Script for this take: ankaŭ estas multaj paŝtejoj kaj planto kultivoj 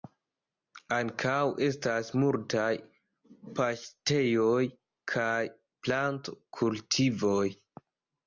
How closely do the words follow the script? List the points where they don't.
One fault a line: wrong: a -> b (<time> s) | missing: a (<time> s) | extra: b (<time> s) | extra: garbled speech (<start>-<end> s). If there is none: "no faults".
no faults